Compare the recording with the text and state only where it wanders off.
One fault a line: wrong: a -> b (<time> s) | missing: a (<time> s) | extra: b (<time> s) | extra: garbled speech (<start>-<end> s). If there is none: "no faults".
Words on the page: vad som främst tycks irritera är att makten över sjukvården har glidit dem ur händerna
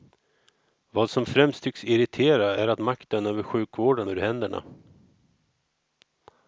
missing: har glidit dem (4.1 s)